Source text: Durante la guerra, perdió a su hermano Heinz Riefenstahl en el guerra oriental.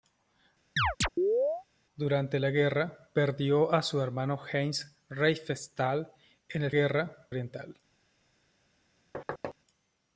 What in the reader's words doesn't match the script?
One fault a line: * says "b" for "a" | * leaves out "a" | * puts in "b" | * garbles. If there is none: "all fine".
all fine